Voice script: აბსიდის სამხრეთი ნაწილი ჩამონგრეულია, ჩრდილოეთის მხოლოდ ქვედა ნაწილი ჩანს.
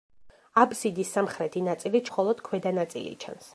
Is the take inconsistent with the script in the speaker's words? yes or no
yes